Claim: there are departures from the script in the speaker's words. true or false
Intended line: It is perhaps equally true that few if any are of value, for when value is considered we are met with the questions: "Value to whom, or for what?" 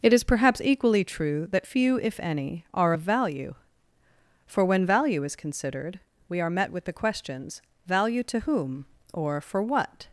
false